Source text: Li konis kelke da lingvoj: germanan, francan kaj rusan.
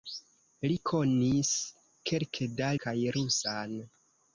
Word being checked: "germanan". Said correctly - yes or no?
no